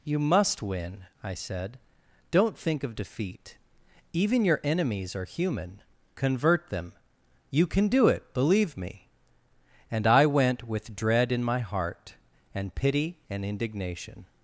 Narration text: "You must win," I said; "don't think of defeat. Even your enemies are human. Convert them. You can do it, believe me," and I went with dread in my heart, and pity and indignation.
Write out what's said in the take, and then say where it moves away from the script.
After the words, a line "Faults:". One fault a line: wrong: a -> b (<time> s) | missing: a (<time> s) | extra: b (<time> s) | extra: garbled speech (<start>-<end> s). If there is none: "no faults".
"You must win," I said; "don't think of defeat. Even your enemies are human. Convert them. You can do it, believe me," and I went with dread in my heart, and pity and indignation.
Faults:
no faults